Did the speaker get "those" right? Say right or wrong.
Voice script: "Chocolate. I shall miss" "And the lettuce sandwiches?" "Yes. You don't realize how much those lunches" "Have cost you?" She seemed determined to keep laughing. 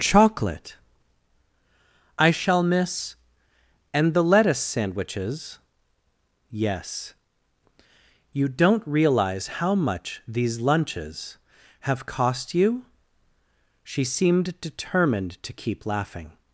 wrong